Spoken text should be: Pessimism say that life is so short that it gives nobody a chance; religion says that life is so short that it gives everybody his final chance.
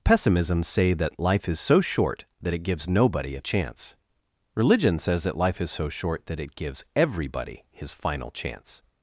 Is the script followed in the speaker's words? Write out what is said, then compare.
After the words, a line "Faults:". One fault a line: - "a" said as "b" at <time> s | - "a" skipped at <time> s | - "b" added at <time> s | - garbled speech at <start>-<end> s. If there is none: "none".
Pessimism say that life is so short that it gives nobody a chance; religion says that life is so short that it gives everybody his final chance.
Faults:
none